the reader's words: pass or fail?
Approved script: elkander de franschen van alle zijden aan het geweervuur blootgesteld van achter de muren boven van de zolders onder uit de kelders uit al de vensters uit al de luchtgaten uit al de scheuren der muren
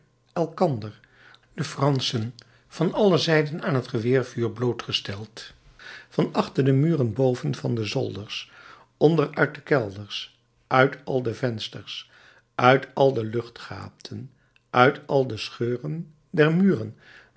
pass